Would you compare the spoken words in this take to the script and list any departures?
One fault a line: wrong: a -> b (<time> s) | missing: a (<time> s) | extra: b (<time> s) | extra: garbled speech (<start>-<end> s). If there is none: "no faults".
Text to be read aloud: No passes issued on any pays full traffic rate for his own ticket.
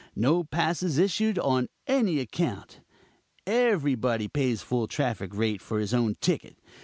extra: account everybody (2.2 s)